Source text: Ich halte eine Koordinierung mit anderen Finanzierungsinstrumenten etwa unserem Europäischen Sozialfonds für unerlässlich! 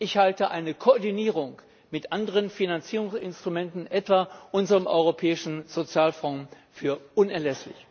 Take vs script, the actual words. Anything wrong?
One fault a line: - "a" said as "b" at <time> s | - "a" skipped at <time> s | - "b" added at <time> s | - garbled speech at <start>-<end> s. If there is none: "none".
none